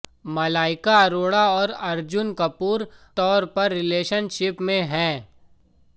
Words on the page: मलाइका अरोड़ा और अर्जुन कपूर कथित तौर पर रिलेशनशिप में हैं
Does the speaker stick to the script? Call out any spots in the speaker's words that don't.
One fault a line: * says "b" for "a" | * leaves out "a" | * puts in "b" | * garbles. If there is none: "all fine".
* leaves out "कथित"